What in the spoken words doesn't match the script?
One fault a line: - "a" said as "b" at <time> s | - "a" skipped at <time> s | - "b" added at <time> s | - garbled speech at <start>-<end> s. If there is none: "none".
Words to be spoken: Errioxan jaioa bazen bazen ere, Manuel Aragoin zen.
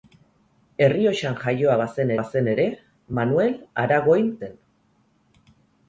none